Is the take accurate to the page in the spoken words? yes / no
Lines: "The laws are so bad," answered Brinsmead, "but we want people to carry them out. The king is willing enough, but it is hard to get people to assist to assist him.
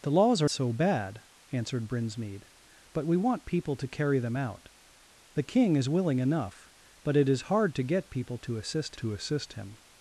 yes